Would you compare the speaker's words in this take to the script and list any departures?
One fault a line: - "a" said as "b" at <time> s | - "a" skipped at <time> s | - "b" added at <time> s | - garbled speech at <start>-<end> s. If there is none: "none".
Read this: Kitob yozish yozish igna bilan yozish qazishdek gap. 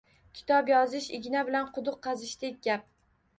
- "yozish" skipped at 1.1 s
- "yozish" said as "quduq" at 1.8 s